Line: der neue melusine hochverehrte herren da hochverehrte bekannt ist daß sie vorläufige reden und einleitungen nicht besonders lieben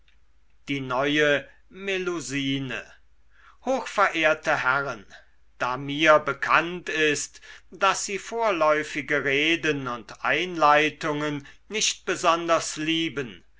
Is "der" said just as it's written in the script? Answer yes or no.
no